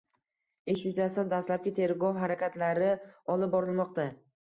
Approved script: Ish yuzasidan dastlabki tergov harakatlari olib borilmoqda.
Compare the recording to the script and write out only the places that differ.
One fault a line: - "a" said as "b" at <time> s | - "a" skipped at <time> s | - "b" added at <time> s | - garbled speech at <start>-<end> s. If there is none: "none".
none